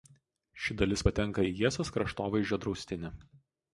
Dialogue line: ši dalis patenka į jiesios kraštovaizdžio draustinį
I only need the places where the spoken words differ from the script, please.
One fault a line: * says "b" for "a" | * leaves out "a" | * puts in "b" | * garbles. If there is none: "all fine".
all fine